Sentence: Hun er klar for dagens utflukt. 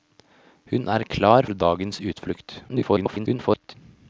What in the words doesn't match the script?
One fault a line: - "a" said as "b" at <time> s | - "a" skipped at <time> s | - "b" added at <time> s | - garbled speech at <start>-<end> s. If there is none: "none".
- "for" skipped at 1.4 s
- garbled speech at 2.7-3.7 s